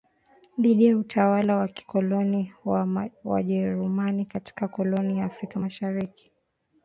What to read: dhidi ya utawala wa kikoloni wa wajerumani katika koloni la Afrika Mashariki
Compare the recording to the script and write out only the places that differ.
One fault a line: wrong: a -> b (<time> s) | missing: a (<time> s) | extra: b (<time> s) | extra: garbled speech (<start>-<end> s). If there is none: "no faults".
no faults